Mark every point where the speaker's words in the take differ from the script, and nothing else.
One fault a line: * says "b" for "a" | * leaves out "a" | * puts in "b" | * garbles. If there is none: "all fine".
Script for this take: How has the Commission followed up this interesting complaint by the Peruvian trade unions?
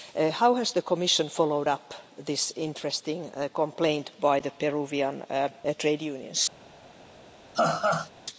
all fine